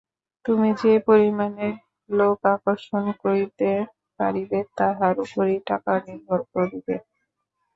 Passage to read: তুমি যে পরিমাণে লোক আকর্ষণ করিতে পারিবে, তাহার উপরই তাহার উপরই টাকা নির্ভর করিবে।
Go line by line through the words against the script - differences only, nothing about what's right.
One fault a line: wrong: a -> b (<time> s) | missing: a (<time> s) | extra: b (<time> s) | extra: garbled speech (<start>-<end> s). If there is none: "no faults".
missing: তাহার উপরই (5.6 s)